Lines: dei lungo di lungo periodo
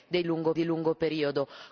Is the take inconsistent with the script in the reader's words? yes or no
no